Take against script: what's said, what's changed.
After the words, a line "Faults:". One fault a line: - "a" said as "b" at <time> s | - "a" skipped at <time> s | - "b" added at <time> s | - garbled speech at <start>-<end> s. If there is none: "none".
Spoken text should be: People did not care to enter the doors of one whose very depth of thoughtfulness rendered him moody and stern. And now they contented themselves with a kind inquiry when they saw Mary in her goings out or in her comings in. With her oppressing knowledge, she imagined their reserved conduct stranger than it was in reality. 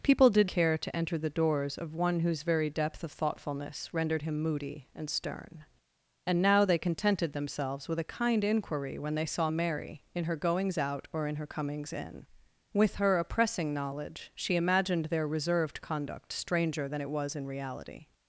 People did care to enter the doors of one whose very depth of thoughtfulness rendered him moody and stern. And now they contented themselves with a kind inquiry when they saw Mary in her goings out or in her comings in. With her oppressing knowledge, she imagined their reserved conduct stranger than it was in reality.
Faults:
- "not" skipped at 0.5 s